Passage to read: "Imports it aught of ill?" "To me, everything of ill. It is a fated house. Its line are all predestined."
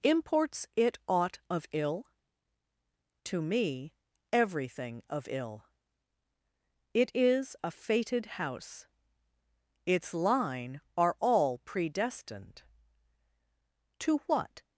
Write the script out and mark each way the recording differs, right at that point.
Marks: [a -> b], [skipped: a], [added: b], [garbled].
"Imports it aught of ill?" "To me, everything of ill. It is a fated house. Its line are all predestined." [added: To what]